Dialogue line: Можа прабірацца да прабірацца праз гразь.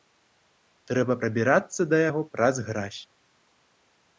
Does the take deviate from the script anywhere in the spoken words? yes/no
yes